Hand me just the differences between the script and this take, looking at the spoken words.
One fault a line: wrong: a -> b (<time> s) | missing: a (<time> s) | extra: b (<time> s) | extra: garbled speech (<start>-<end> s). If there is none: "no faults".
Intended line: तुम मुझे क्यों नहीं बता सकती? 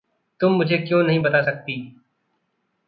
no faults